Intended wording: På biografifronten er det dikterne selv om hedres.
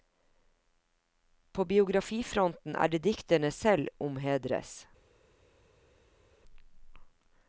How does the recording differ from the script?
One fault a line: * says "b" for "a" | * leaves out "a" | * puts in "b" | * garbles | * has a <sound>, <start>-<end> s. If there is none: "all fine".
all fine